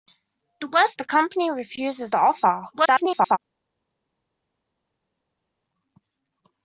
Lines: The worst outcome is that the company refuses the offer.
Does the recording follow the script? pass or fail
fail